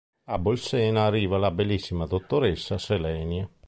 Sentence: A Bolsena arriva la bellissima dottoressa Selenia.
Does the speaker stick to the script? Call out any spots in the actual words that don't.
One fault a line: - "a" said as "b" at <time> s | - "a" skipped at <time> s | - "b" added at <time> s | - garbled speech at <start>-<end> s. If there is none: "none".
none